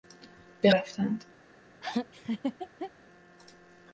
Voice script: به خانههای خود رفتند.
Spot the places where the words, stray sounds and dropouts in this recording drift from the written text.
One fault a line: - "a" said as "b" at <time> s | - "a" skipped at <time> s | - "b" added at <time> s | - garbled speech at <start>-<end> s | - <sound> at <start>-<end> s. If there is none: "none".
- "خانههای خود" skipped at 0.7 s
- laugh at 1.8-2.9 s